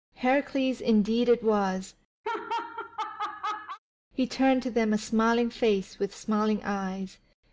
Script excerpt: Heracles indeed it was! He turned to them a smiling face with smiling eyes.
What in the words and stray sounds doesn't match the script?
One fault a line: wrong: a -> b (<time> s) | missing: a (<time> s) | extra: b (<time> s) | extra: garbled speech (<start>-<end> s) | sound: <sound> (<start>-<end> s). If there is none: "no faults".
sound: laugh (2.2-3.8 s)